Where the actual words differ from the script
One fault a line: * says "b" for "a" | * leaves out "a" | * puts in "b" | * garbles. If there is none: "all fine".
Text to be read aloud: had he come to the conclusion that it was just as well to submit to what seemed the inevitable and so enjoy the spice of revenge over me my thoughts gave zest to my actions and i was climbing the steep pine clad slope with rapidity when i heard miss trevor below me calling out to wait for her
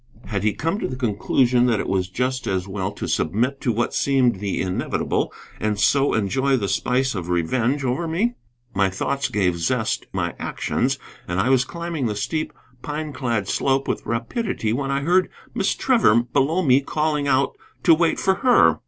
* leaves out "to"